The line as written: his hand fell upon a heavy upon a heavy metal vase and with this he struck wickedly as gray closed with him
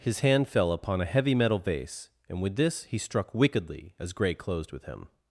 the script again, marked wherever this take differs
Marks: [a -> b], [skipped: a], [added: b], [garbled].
his hand fell upon a heavy [skipped: upon a heavy] metal vase and with this he struck wickedly as gray closed with him